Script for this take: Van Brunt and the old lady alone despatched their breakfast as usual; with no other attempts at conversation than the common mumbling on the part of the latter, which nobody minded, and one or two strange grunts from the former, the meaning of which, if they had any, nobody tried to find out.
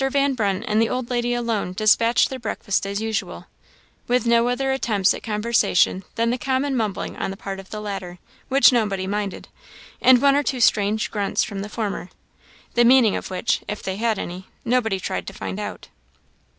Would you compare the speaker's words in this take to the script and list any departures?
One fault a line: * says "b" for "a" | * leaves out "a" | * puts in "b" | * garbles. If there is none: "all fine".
all fine